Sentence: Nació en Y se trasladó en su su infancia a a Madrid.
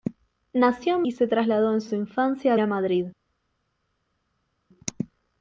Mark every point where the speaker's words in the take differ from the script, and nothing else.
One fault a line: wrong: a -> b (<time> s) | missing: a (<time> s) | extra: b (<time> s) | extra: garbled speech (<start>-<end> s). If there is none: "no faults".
no faults